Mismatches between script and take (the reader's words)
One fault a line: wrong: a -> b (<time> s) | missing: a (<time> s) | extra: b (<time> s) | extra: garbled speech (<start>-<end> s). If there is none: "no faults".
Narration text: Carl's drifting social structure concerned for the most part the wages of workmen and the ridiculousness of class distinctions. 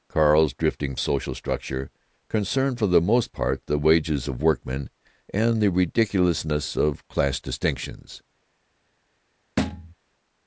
no faults